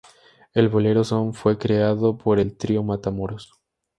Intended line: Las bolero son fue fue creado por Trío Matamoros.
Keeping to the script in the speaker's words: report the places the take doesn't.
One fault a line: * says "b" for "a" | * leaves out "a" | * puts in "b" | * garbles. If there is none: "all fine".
* says "El" for "Las"
* leaves out "fue"
* puts in "el"